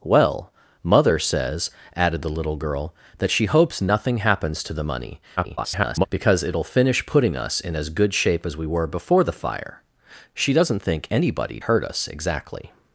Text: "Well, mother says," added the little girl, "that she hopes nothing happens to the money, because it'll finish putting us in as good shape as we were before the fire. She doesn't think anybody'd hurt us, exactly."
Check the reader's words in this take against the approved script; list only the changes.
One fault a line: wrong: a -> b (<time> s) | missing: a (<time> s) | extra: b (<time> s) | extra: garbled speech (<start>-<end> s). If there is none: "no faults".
extra: garbled speech (5.4-6.1 s)